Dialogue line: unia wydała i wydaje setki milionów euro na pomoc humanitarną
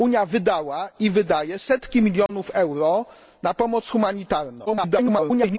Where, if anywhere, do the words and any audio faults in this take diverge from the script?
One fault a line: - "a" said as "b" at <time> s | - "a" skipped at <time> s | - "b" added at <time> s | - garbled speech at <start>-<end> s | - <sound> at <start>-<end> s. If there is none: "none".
- dropout at 2.3-2.3 s
- garbled speech at 4.7-5.6 s